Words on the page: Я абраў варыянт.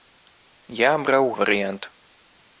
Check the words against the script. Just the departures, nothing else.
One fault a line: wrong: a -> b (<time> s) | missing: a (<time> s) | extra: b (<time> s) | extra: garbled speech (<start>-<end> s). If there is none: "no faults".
no faults